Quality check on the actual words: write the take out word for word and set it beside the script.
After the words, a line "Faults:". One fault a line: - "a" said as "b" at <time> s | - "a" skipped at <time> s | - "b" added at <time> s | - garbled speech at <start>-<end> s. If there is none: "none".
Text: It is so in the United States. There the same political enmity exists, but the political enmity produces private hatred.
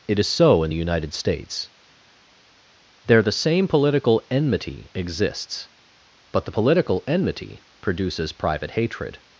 It is so in the United States. There the same political enmity exists, but the political enmity produces private hatred.
Faults:
none